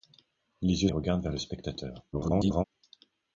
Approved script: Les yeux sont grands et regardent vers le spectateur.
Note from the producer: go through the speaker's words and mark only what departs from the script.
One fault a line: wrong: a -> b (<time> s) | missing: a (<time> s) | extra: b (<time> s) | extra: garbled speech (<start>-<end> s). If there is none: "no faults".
missing: sont grands (0.9 s)
extra: garbled speech (2.1-2.6 s)